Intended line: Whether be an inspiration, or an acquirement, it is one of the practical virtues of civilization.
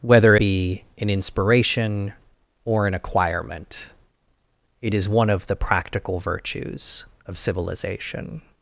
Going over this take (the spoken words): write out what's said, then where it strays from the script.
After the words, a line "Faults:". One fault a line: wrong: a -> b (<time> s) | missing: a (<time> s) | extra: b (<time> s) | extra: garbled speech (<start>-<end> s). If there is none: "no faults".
Whether be an inspiration, or an acquirement, it is one of the practical virtues of civilization.
Faults:
no faults